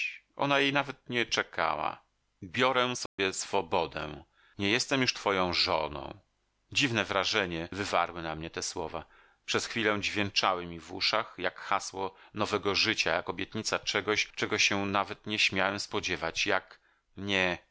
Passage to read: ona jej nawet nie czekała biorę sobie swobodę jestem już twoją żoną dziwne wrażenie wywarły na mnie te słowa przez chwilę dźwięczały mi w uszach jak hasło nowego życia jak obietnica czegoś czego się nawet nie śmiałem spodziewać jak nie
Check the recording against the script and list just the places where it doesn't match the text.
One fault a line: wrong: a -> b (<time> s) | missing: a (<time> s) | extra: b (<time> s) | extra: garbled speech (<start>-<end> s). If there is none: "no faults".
extra: nie (4.6 s)